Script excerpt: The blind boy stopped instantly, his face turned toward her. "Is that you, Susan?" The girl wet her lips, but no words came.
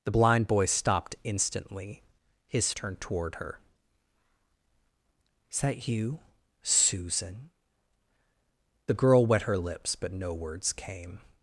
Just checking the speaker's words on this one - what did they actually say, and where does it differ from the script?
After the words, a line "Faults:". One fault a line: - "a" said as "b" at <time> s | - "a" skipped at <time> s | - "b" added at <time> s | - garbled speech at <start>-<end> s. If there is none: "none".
The blind boy stopped instantly, his turned toward her. "Is that you, Susan?" The girl wet her lips, but no words came.
Faults:
- "face" skipped at 2.7 s